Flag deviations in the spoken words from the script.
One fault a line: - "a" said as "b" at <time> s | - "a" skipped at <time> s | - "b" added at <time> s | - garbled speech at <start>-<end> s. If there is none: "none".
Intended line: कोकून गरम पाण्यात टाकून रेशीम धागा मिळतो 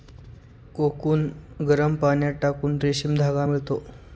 none